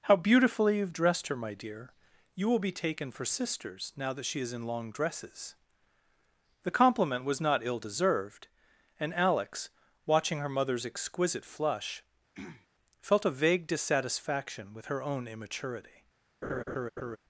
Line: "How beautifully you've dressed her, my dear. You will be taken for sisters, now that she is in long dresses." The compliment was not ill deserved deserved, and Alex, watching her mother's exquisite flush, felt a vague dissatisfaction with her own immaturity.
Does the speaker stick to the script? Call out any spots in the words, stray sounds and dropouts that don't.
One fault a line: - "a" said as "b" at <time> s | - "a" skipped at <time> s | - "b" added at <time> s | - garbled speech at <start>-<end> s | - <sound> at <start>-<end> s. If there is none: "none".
- "deserved" skipped at 8.5 s
- throat clearing at 12.3-12.7 s
- laugh at 16.4-17.2 s